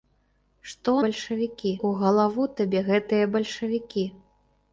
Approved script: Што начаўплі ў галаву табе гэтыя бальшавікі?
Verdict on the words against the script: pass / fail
fail